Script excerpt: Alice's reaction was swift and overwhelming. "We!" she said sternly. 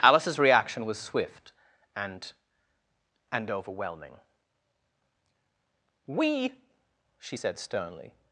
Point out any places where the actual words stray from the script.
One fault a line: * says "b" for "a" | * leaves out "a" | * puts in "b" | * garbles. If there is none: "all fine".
* puts in "and"